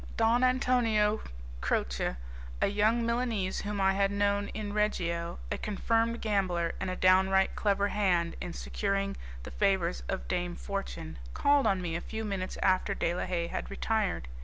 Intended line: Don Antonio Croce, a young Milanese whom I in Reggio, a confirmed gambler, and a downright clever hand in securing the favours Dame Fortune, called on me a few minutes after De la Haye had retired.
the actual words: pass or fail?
fail